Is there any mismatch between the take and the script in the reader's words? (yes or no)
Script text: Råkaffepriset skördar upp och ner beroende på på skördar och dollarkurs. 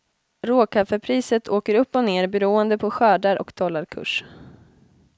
yes